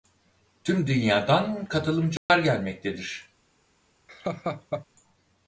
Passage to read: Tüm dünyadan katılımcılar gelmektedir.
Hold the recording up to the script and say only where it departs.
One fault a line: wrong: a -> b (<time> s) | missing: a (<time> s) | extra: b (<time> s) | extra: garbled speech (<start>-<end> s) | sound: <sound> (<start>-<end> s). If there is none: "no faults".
sound: dropout (2.2-2.3 s)
sound: laugh (4.1-4.9 s)